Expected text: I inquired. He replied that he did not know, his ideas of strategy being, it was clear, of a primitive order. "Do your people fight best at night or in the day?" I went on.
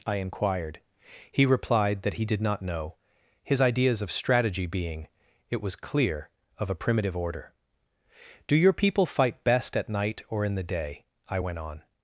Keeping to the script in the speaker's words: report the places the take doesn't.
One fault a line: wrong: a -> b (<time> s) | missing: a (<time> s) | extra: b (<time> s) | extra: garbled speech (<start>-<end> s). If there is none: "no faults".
no faults